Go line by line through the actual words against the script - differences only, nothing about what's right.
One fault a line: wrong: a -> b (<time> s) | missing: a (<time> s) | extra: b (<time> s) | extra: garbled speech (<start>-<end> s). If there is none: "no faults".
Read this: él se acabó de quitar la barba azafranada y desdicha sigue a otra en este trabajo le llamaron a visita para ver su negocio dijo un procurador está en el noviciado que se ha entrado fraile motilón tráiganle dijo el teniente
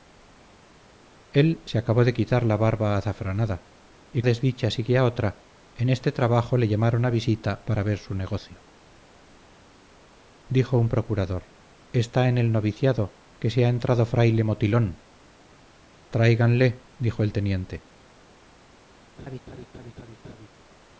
no faults